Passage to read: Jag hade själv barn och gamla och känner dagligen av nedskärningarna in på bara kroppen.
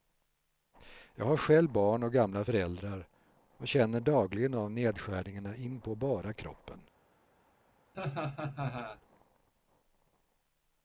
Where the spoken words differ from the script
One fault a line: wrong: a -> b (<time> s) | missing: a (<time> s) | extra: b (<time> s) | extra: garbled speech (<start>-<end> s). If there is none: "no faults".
wrong: hade -> har (1.2 s)
extra: föräldrar (2.4 s)